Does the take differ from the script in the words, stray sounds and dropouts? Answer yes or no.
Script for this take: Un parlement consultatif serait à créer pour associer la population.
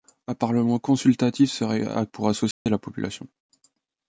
yes